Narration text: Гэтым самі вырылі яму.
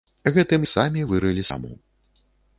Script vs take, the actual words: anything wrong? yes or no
no